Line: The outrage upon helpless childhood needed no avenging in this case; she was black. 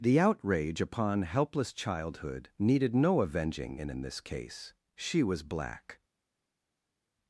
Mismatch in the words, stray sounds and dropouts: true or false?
true